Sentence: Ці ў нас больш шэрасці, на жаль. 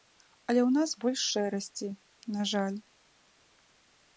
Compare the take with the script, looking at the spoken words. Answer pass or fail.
fail